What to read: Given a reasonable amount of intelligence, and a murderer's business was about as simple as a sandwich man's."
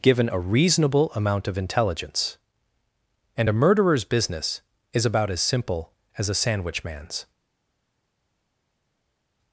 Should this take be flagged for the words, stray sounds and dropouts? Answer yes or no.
yes